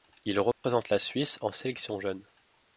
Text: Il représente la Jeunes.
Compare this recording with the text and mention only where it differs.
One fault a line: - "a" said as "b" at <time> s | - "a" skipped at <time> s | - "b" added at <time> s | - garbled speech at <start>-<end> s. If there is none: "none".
- "Suisse en sélections" added at 1.0 s